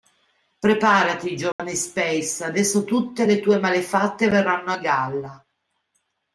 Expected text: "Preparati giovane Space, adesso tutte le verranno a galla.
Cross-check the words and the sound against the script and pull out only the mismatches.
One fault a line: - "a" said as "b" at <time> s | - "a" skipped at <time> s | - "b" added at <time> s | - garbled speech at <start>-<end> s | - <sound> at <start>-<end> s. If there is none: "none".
- dropout at 1.5-1.6 s
- "tue malefatte" added at 3.4 s